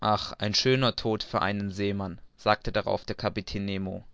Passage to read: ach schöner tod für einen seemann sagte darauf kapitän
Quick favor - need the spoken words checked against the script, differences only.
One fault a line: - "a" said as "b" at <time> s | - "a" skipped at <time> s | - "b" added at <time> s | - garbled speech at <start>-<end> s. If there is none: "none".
- "ein" added at 0.4 s
- "der" added at 3.0 s